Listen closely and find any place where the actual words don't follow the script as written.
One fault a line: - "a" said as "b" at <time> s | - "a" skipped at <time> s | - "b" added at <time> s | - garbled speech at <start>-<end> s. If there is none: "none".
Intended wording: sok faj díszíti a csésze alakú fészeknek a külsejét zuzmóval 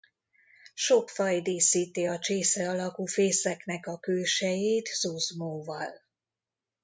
none